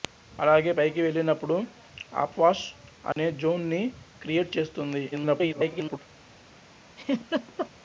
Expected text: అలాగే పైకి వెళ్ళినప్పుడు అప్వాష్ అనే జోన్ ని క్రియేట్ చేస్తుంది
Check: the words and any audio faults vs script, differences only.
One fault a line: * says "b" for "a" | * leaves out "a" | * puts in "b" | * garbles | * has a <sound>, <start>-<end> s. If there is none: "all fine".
* has a dropout, 3.1-3.2 s
* garbles
* has a laugh, 7.0-7.7 s